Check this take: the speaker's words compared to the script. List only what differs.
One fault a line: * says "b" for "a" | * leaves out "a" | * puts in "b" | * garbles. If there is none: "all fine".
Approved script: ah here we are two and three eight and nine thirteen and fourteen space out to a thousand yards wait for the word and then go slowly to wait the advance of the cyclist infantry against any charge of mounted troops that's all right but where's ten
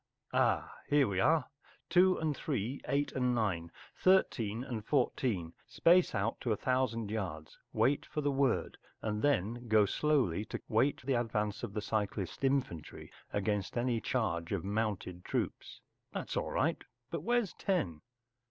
all fine